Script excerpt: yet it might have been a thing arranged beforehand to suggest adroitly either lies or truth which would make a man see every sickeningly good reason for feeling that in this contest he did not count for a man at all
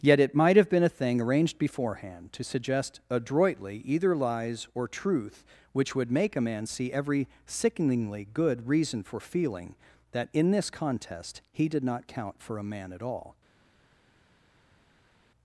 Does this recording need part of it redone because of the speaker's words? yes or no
no